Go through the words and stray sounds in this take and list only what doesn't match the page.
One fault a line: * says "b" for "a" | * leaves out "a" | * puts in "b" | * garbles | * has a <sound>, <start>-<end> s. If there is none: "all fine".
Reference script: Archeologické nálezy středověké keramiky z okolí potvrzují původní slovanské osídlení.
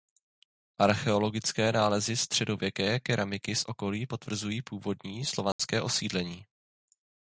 * has a dropout, 5.5-5.6 s